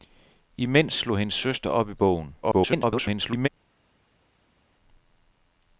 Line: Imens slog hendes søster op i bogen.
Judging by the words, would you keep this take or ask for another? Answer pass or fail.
fail